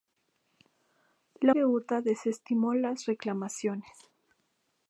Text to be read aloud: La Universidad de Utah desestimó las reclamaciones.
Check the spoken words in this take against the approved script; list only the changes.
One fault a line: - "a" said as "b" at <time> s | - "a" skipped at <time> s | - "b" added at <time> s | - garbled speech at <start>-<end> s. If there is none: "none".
- "Universidad" skipped at 1.6 s